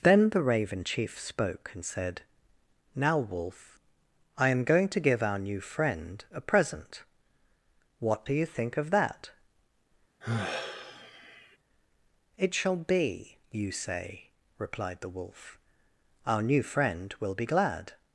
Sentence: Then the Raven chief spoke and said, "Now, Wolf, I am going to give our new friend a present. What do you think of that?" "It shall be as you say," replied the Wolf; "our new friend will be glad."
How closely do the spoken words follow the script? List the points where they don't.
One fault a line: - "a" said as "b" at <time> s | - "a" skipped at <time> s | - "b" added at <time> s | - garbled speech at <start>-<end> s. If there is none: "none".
- "as" skipped at 13.4 s